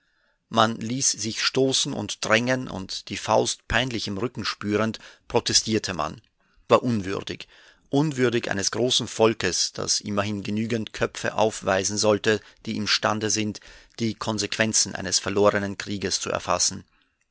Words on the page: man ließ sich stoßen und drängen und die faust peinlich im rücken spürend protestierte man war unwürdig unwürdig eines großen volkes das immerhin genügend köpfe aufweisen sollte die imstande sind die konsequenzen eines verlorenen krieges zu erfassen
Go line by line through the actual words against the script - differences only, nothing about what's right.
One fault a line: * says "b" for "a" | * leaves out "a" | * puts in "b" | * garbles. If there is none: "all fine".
all fine